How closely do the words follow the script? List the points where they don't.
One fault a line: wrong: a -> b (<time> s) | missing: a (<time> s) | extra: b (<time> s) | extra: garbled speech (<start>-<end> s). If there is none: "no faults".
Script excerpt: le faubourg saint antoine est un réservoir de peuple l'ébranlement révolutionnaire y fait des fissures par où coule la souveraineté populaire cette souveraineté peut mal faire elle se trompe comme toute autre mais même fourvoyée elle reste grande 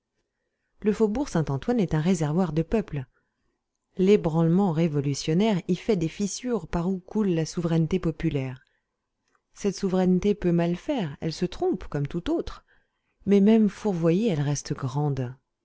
no faults